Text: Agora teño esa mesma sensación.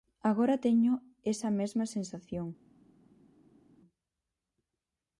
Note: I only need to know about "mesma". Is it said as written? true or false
true